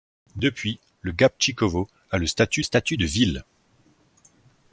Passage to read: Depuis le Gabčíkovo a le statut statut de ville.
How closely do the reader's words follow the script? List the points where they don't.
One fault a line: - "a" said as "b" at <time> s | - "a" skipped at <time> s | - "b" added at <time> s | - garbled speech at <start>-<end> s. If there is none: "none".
none